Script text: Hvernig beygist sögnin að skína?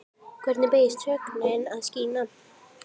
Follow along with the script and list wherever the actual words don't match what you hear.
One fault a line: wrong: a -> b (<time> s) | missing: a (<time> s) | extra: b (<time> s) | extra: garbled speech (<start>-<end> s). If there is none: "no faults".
no faults